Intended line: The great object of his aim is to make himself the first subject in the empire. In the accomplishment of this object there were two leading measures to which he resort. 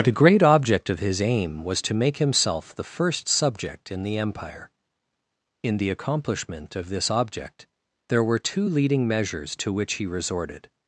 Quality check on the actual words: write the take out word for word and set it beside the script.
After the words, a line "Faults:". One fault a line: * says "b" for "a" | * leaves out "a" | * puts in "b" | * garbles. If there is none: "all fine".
The great object of his aim was to make himself the first subject in the empire. In the accomplishment of this object there were two leading measures to which he resorted.
Faults:
* says "was" for "is"
* says "resorted" for "resort"